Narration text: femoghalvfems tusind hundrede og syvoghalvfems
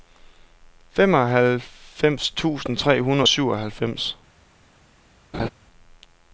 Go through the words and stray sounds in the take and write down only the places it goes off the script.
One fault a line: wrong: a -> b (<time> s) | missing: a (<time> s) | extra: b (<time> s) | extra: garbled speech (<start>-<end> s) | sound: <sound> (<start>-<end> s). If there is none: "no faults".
extra: tre (2.8 s)
sound: laugh (5.3-5.5 s)